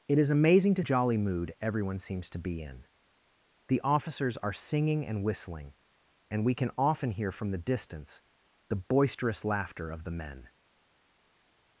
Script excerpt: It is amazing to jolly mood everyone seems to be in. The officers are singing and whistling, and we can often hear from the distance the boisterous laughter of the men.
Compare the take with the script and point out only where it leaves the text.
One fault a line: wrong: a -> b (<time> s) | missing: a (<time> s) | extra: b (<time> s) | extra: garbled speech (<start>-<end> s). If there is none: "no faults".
no faults